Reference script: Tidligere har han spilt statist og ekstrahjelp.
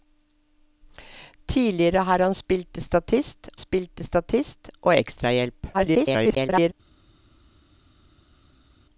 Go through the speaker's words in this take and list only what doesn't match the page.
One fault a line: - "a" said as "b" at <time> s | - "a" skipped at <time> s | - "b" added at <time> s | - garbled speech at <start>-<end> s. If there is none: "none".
- "spilt statist" added at 3.6 s
- garbled speech at 5.7-6.7 s